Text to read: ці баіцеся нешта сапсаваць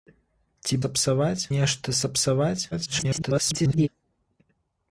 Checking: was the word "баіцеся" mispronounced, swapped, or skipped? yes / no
yes